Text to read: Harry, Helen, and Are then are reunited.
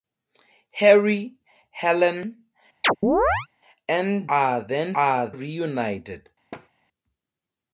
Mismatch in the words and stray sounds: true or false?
true